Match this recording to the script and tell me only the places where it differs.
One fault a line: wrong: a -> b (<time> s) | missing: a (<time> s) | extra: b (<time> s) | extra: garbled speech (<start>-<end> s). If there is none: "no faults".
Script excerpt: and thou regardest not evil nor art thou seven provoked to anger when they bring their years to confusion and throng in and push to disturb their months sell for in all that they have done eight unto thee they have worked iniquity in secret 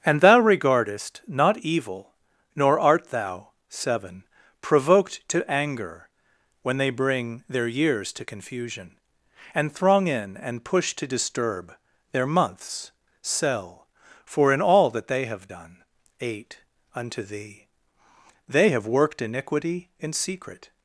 no faults